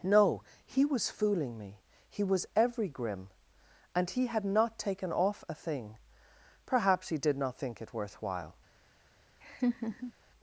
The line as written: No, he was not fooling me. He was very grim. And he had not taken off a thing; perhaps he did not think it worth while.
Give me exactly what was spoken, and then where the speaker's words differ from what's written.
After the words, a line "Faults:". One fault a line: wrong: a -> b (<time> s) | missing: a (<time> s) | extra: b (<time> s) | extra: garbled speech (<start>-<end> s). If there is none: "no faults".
No, he was fooling me. He was every grim. And he had not taken off a thing; perhaps he did not think it worth while.
Faults:
missing: not (1.1 s)
wrong: very -> every (2.5 s)